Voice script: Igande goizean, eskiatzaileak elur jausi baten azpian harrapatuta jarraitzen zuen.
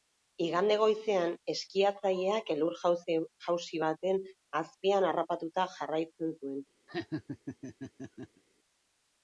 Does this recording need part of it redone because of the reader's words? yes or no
no